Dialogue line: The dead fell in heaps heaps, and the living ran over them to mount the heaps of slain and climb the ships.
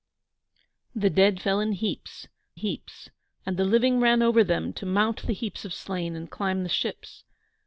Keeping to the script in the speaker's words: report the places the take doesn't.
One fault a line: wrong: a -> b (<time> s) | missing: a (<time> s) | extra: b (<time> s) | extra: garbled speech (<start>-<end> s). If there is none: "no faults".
no faults